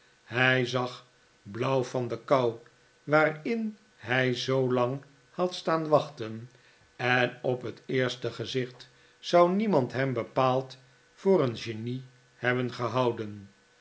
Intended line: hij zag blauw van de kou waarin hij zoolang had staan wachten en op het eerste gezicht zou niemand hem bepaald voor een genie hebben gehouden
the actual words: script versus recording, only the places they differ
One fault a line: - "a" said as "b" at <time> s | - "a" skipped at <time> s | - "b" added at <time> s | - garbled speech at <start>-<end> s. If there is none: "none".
none